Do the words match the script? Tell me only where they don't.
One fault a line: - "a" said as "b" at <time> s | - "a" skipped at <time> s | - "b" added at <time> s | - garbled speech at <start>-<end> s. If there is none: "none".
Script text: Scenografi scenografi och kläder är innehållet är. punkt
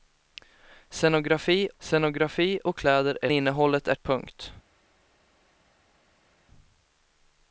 none